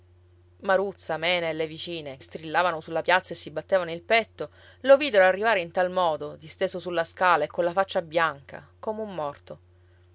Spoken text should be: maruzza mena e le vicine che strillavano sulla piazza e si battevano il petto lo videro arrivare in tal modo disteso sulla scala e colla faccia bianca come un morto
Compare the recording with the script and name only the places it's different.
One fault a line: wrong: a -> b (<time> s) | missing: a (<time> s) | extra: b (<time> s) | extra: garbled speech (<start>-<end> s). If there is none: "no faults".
missing: che (2.2 s)